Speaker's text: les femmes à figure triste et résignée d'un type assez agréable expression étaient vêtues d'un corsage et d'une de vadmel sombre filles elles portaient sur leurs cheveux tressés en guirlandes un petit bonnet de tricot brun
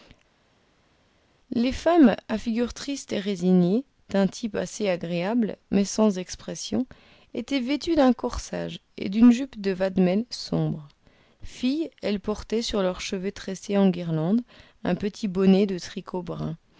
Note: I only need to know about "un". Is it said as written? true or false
true